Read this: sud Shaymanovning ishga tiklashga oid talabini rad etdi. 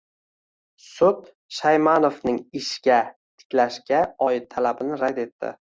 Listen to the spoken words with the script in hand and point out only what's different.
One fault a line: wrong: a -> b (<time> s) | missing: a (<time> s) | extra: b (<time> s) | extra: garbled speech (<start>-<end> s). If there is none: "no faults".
no faults